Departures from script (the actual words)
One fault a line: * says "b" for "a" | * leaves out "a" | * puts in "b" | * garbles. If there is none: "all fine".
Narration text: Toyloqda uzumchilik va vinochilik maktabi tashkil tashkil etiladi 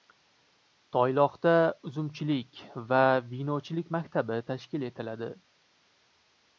* leaves out "tashkil"